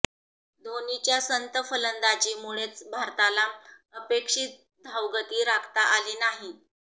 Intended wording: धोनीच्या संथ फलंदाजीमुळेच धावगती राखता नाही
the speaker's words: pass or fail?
fail